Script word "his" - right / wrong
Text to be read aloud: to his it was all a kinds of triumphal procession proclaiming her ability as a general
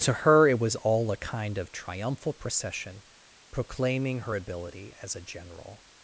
wrong